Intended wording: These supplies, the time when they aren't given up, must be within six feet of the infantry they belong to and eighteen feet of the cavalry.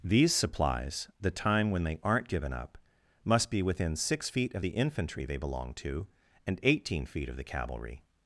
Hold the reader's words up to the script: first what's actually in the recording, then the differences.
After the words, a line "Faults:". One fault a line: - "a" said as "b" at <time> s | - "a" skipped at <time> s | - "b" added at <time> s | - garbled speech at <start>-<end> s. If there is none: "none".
These supplies, the time when they aren't given up, must be within six feet of the infantry they belong to and eighteen feet of the cavalry.
Faults:
none